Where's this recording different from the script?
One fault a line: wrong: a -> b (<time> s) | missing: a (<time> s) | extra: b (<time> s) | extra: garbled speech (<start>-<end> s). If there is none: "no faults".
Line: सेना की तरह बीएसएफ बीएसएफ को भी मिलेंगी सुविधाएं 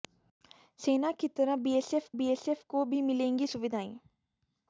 no faults